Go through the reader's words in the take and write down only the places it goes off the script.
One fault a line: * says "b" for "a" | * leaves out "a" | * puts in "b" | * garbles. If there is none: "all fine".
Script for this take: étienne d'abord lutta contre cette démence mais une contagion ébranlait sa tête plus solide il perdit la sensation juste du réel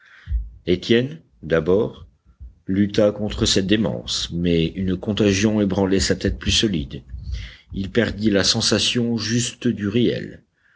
all fine